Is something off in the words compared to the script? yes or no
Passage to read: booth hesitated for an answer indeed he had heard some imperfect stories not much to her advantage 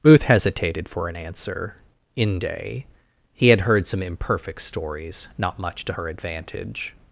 yes